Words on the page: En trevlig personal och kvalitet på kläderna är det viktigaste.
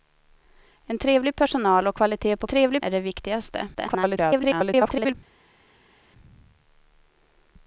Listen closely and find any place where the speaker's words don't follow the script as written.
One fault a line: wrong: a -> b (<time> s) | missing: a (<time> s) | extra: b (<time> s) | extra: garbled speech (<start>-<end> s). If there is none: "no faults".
wrong: kläderna -> trevlig (2.5 s)
extra: garbled speech (3.7-5.2 s)